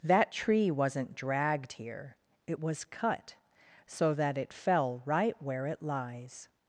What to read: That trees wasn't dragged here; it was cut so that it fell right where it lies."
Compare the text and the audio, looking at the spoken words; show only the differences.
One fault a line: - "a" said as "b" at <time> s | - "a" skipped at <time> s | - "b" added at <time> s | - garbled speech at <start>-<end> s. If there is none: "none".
- "trees" said as "tree" at 0.3 s